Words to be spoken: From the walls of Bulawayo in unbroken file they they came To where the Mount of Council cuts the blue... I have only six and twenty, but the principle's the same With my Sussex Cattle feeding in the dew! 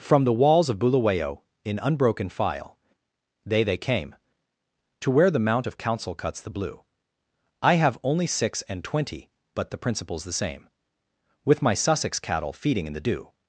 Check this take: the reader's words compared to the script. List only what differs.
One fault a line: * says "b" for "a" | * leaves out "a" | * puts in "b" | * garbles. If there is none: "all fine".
all fine